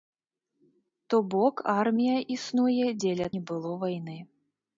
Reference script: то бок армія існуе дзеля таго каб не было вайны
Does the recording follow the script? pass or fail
fail